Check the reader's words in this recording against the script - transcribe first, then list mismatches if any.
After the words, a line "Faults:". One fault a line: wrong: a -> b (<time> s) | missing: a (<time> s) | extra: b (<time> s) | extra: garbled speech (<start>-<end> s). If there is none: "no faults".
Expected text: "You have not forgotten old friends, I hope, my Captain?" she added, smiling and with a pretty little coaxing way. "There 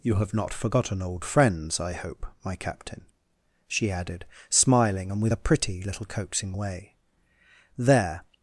"You have not forgotten old friends, I hope, my Captain?" she added, smiling and with a pretty little coaxing way. "There
Faults:
no faults